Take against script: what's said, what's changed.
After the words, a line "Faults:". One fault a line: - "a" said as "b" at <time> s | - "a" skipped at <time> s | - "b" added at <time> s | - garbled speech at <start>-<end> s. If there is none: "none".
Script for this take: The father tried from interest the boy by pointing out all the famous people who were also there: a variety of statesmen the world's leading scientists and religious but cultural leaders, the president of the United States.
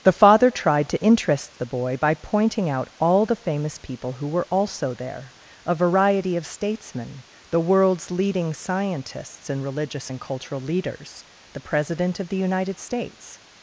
The father tried to interest the boy by pointing out all the famous people who were also there: a variety of statesmen the world's leading scientists and religious and cultural leaders, the president of the United States.
Faults:
- "from" said as "to" at 0.9 s
- "but" said as "and" at 10.1 s